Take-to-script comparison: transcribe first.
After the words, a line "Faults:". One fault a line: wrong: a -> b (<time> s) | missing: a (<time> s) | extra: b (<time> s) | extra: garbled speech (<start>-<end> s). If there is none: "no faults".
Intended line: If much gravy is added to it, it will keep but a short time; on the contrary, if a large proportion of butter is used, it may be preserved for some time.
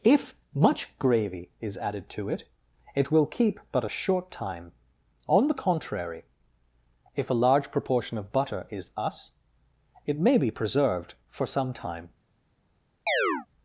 If much gravy is added to it, it will keep but a short time; on the contrary, if a large proportion of butter is us, it may be preserved for some time.
Faults:
wrong: used -> us (9.0 s)